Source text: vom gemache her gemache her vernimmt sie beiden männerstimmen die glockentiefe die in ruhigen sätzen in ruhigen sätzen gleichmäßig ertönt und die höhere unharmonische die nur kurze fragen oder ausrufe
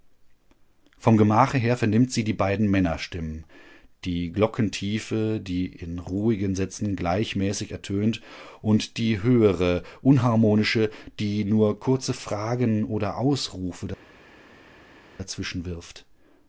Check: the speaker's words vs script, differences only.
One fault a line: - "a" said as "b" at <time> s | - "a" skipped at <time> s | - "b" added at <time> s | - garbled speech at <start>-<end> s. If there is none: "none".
- "gemache her" skipped at 1.8 s
- "die" added at 2.2 s
- "in ruhigen sätzen" skipped at 6.9 s